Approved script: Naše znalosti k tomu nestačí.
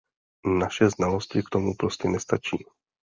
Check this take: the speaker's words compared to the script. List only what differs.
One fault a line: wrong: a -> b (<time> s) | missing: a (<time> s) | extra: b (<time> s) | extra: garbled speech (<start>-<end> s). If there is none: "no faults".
extra: prostě (1.7 s)